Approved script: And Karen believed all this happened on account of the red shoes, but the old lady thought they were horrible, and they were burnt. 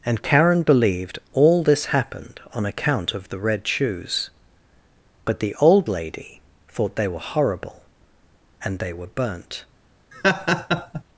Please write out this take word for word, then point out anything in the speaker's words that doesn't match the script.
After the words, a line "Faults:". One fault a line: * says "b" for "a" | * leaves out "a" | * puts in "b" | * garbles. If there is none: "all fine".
And Karen believed all this happened on account of the red shoes, but the old lady thought they were horrible, and they were burnt.
Faults:
all fine